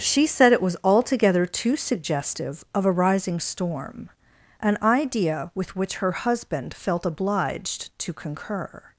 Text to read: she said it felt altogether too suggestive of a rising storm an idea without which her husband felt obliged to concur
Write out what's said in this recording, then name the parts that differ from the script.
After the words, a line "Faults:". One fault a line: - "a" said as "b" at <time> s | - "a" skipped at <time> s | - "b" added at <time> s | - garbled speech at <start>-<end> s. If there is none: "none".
she said it was altogether too suggestive of a rising storm an idea with which her husband felt obliged to concur
Faults:
- "felt" said as "was" at 0.6 s
- "without" said as "with" at 5.5 s